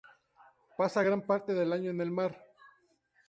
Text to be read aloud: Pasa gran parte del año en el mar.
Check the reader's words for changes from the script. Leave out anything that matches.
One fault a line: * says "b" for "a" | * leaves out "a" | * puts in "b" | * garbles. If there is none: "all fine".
all fine